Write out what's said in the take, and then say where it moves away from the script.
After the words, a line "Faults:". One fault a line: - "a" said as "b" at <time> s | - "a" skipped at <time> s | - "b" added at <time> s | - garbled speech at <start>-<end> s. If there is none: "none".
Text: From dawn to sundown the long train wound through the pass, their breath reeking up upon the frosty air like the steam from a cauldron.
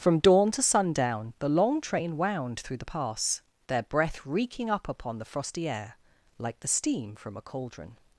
From dawn to sundown the long train wound through the pass, their breath reeking up upon the frosty air like the steam from a cauldron.
Faults:
none